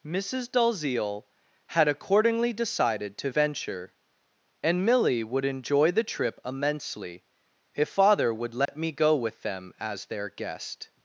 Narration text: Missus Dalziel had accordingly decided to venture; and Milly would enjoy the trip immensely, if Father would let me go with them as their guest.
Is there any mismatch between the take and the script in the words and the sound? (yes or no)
yes